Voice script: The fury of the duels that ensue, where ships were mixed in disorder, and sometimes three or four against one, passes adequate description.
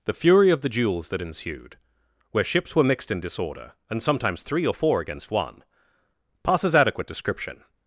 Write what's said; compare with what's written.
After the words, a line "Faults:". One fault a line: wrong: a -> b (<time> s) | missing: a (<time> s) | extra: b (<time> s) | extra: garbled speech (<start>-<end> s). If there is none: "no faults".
The fury of the duels that ensued, where ships were mixed in disorder, and sometimes three or four against one, passes adequate description.
Faults:
wrong: ensue -> ensued (1.2 s)